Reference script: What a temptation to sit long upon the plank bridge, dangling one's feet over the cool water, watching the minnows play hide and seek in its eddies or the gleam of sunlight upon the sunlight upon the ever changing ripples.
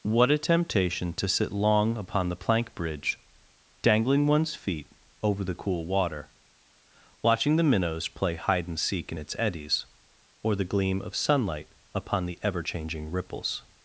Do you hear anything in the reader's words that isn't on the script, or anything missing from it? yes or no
yes